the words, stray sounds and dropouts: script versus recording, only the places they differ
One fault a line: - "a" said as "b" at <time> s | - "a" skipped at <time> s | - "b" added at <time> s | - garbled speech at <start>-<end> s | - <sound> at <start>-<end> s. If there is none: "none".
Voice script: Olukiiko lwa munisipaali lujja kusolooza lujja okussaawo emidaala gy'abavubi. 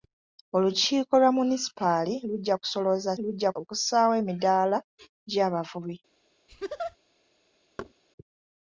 - laugh at 6.5-7.0 s
- thud at 7.8-7.9 s